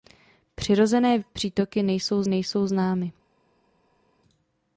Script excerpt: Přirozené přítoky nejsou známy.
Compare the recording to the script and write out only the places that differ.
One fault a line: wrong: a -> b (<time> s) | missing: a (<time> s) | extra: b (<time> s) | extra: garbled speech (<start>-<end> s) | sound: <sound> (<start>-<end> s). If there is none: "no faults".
extra: nejsou (2.3 s)